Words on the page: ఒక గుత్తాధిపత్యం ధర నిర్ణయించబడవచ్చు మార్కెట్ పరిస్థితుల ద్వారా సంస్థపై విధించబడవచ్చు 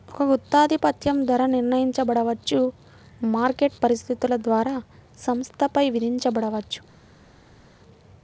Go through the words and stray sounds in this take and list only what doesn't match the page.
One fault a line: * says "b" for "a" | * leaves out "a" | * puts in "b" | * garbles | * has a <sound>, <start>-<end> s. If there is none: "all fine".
all fine